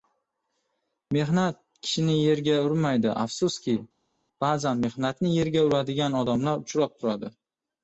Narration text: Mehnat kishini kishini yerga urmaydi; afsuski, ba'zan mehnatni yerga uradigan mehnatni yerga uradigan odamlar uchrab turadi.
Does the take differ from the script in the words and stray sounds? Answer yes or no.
yes